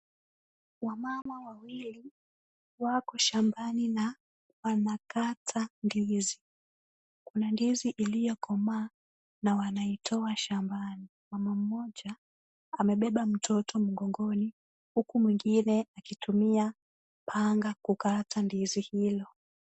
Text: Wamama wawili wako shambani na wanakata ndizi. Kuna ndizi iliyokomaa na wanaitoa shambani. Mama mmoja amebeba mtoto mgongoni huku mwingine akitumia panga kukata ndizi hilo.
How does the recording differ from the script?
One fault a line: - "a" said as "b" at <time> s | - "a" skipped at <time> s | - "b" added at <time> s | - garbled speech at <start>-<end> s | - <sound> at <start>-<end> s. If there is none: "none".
- dropout at 1.2-1.3 s